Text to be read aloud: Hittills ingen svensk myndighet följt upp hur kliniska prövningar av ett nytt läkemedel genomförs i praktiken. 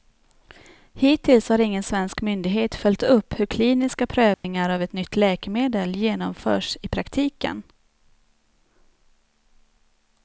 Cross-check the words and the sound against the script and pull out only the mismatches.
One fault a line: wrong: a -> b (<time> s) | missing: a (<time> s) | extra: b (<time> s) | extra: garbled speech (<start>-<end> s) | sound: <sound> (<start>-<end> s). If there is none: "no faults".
extra: har (1.5 s)
sound: dropout (4.3-4.4 s)